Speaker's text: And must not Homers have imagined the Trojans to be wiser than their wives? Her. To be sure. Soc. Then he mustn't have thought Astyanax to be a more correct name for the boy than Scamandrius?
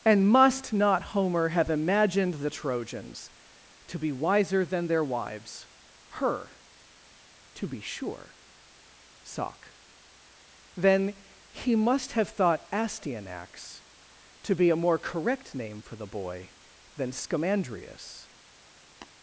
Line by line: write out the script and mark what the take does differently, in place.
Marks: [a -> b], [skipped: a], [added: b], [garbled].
And must not [Homers -> Homer] have imagined the Trojans to be wiser than their wives? Her. To be sure. Soc. Then he [mustn't -> must] have thought Astyanax to be a more correct name for the boy than Scamandrius?